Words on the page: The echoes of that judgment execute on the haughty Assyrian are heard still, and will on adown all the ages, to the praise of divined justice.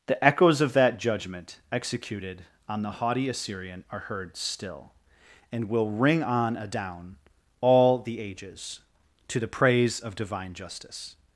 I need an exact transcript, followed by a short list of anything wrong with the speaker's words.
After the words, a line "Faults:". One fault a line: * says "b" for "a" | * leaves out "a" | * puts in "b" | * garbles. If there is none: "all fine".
The echoes of that judgment executed on the haughty Assyrian are heard still, and will ring on adown all the ages, to the praise of divine justice.
Faults:
* says "executed" for "execute"
* puts in "ring"
* says "divine" for "divined"